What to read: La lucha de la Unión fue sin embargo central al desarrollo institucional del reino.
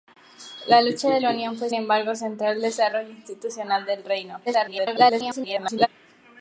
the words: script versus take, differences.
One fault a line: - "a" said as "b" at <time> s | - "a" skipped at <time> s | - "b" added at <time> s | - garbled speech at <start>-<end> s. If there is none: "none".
- "sin" skipped at 1.7 s
- garbled speech at 4.5-5.9 s